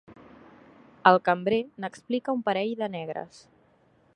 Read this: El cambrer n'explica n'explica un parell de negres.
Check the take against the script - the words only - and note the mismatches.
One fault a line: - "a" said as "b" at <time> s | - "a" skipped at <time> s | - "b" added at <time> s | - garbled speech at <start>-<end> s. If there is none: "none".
- "n'explica" skipped at 2.4 s